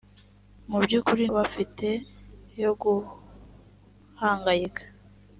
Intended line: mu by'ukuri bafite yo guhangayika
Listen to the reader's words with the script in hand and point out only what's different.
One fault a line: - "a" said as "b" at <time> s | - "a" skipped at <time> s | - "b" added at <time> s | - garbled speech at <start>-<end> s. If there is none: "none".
none